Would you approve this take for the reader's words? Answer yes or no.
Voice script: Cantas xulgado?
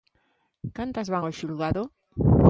no